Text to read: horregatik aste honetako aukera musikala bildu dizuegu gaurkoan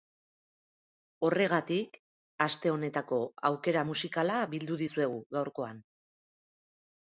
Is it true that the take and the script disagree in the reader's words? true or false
false